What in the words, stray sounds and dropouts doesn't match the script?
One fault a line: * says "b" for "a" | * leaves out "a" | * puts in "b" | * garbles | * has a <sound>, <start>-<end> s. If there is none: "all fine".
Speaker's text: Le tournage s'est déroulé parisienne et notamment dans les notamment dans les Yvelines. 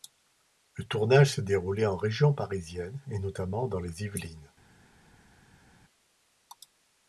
* puts in "en région"
* leaves out "notamment dans les"